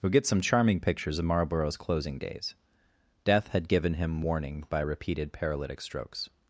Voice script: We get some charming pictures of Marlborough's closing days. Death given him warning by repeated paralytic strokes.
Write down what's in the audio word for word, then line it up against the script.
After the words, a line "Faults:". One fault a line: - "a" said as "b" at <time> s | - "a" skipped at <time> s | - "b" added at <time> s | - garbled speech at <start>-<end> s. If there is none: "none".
We get some charming pictures of Marlborough's closing days. Death had given him warning by repeated paralytic strokes.
Faults:
- "had" added at 3.5 s